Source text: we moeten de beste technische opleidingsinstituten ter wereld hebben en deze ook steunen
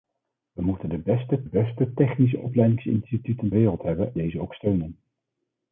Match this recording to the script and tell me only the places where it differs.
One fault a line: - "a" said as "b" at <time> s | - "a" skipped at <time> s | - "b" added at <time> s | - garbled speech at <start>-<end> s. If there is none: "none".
- "beste" added at 1.4 s
- "ter" skipped at 3.5 s
- "en" skipped at 4.2 s